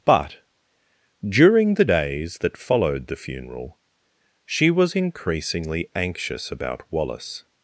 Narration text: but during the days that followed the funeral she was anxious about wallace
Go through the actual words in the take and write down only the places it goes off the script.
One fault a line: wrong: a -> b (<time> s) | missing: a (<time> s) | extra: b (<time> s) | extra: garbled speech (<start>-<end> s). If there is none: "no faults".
extra: increasingly (5.0 s)